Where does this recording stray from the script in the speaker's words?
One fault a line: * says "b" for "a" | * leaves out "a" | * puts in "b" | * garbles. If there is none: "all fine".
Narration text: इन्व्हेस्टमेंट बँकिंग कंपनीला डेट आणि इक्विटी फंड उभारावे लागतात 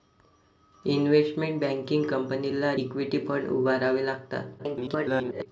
* leaves out "डेट आणि"
* garbles